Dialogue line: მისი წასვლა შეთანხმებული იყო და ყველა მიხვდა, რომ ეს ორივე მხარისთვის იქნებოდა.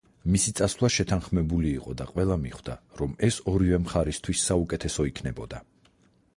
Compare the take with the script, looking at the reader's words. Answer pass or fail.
fail